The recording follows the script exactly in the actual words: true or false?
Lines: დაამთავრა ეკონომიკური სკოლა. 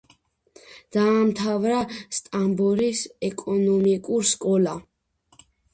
false